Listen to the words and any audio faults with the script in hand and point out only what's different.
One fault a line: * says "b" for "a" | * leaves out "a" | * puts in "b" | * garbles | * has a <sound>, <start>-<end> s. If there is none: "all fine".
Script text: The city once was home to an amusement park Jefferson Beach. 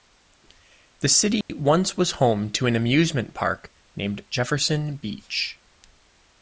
* has a dropout, 1.4-1.5 s
* puts in "named"